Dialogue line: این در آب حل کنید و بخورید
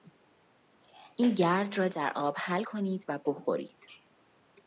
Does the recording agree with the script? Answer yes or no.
no